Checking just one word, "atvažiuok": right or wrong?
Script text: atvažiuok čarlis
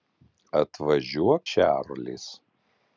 right